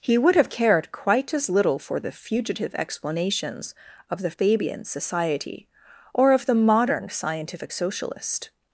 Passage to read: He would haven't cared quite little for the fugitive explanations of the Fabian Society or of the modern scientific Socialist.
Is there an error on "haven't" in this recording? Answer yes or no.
yes